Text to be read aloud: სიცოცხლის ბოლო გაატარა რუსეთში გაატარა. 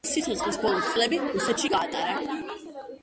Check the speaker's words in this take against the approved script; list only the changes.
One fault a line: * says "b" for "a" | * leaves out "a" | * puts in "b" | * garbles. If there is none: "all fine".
* says "წლები" for "გაატარა"